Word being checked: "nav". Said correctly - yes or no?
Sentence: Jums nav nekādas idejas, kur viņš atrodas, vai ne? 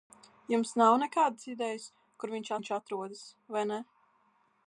yes